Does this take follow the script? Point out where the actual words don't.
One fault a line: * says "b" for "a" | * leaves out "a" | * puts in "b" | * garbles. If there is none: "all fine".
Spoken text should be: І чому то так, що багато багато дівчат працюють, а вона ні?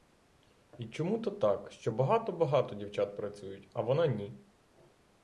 all fine